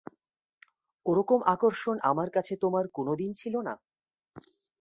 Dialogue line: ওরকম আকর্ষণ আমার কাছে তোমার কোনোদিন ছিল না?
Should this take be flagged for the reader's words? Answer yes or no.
no